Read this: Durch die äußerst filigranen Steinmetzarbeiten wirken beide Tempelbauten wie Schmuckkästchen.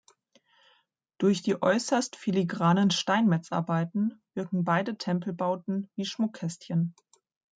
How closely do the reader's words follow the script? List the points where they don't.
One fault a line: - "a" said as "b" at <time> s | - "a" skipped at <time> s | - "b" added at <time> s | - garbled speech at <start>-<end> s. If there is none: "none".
none